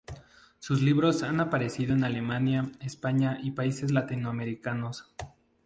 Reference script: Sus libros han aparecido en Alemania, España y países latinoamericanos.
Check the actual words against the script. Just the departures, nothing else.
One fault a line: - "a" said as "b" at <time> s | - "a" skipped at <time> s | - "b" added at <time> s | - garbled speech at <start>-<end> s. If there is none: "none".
none